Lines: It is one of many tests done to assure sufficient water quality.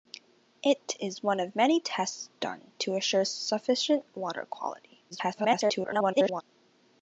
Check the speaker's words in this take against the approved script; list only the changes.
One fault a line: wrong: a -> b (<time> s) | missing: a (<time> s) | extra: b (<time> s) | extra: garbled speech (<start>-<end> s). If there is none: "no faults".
extra: garbled speech (5.1-6.4 s)